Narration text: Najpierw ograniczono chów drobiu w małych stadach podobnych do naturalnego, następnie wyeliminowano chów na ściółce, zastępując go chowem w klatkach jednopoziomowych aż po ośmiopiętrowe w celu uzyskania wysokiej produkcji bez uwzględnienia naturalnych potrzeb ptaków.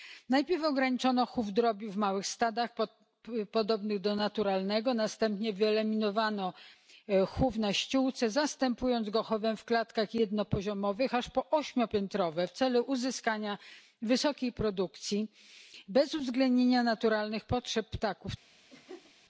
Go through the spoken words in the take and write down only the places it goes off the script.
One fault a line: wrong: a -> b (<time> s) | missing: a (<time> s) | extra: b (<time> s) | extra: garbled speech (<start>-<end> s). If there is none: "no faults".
no faults